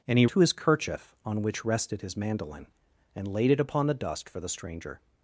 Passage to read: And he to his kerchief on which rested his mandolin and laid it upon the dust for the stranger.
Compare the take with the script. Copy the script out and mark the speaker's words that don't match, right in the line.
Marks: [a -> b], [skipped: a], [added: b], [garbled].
And he to his kerchief on which rested his mandolin and laid it upon the dust for the stranger.